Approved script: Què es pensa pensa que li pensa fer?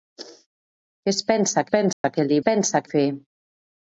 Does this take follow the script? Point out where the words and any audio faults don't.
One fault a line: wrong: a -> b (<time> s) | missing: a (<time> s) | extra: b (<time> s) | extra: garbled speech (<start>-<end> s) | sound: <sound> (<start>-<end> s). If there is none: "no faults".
sound: dropout (1.9-2.0 s)